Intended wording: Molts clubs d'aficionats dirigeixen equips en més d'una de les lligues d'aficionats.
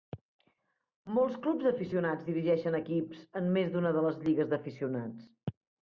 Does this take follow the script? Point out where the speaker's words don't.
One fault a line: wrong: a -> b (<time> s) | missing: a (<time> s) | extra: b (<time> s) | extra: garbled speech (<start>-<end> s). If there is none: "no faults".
no faults